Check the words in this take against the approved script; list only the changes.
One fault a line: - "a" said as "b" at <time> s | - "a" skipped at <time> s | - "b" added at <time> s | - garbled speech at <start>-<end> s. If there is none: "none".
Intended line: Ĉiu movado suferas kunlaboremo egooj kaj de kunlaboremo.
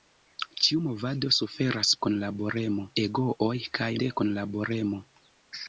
none